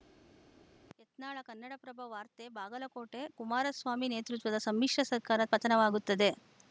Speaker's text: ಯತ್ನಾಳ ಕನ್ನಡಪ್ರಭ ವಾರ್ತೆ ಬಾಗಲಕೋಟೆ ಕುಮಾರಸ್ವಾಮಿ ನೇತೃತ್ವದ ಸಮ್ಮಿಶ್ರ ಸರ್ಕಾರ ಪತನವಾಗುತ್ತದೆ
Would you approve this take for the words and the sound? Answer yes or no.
yes